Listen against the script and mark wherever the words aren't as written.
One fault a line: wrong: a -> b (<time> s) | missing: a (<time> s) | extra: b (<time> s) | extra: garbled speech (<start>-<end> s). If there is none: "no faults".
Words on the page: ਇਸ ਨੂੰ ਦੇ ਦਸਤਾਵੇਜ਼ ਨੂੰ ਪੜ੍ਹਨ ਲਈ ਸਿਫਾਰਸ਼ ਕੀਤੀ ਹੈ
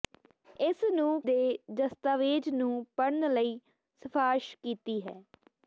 no faults